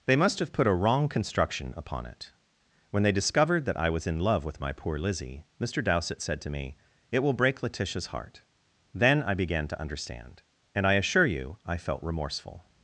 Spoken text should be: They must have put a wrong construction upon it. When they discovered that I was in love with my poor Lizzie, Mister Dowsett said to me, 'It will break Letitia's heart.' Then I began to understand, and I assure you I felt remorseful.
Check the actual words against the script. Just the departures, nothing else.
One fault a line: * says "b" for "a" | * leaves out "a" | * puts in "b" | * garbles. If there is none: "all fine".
all fine